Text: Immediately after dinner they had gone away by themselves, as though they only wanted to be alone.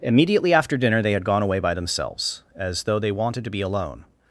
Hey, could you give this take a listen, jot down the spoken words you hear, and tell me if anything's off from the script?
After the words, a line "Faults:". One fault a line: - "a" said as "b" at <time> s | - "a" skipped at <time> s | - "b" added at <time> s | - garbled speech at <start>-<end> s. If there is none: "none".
Immediately after dinner they had gone away by themselves, as though they wanted to be alone.
Faults:
- "only" skipped at 3.1 s